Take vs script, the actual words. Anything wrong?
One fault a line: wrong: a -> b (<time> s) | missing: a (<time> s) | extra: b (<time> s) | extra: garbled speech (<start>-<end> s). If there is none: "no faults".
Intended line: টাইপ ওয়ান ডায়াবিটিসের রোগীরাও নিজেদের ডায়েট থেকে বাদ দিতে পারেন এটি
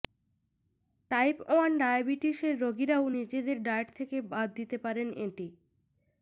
no faults